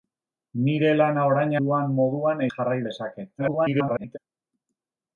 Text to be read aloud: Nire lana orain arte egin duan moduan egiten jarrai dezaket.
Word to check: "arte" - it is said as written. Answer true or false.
false